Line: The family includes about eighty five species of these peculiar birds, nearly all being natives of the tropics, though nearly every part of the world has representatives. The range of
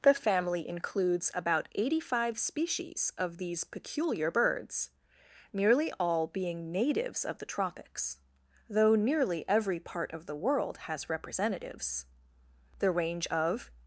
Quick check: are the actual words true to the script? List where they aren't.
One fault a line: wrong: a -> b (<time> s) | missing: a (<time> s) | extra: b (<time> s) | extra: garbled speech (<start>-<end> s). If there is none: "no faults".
no faults